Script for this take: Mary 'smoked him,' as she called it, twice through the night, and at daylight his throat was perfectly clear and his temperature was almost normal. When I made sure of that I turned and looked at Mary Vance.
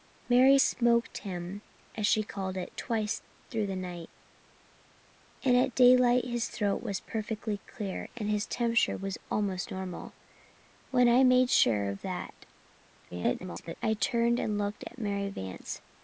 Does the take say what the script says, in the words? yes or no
no